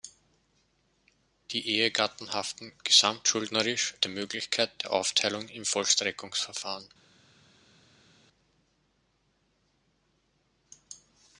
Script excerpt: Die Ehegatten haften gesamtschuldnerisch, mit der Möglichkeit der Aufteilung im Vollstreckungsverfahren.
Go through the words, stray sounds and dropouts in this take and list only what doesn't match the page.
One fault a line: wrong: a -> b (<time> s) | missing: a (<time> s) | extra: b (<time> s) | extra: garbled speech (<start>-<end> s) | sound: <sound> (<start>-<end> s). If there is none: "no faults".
missing: mit (4.0 s)